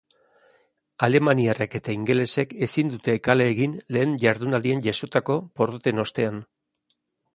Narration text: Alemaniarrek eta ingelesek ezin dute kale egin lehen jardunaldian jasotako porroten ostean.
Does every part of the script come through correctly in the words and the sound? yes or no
yes